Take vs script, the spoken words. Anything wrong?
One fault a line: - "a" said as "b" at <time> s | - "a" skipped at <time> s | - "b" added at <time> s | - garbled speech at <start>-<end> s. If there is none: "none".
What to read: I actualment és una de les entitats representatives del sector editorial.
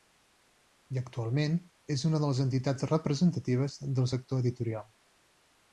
none